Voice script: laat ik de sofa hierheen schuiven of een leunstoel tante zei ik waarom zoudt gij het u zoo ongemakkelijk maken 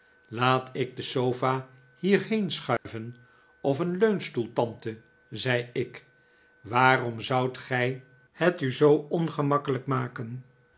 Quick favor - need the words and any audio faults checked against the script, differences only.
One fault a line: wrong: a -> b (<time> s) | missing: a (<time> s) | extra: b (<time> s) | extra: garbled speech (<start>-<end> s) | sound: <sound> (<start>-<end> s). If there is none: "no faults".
sound: dropout (2.8-2.9 s)